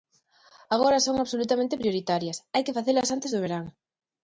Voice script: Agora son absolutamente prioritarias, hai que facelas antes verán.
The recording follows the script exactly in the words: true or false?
false